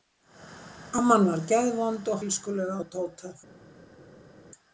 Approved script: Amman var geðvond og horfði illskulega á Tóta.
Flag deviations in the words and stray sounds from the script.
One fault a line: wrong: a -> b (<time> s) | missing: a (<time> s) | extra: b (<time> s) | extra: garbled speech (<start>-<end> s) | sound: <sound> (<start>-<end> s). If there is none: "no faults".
missing: horfði (2.2 s)